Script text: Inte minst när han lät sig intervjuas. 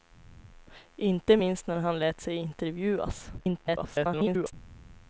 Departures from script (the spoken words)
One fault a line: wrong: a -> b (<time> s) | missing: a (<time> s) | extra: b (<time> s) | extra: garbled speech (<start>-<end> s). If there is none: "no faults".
extra: garbled speech (3.4-4.5 s)